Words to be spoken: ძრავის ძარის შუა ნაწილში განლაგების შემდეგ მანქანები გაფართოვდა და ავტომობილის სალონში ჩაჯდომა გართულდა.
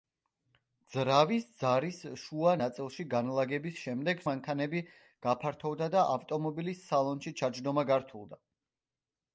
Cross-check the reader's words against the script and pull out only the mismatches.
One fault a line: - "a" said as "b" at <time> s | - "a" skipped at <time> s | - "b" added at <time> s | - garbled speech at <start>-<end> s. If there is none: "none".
none